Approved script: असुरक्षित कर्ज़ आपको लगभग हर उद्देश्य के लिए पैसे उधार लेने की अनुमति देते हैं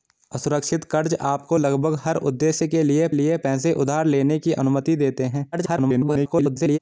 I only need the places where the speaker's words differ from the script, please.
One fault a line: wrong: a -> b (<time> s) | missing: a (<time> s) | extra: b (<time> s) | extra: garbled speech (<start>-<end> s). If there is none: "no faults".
extra: लिए (3.1 s)
extra: garbled speech (5.5-6.8 s)